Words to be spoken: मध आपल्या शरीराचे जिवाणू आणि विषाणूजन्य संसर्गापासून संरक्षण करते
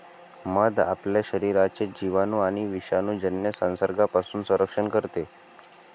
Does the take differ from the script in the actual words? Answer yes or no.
no